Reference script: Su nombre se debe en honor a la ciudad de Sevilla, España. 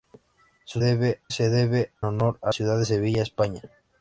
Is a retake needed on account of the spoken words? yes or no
yes